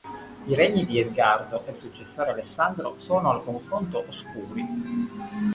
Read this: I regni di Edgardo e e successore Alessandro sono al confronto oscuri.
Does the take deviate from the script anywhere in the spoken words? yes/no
no